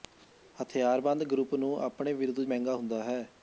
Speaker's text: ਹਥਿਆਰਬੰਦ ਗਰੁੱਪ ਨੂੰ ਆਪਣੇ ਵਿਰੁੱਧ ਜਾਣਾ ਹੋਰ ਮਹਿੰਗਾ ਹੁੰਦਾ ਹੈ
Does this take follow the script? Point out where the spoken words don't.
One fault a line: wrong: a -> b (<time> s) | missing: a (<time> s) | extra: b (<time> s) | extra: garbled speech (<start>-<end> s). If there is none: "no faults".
missing: ਜਾਣਾ ਹੋਰ (2.4 s)